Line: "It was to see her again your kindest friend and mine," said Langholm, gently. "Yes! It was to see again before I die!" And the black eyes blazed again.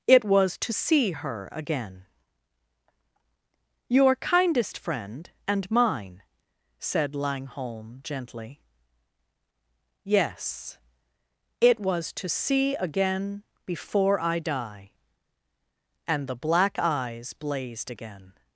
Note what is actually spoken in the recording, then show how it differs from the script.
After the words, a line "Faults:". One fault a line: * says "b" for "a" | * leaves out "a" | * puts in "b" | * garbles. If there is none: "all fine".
"It was to see her again your kindest friend and mine," said Langholm, gently. "Yes! It was to see again before I die!" And the black eyes blazed again.
Faults:
all fine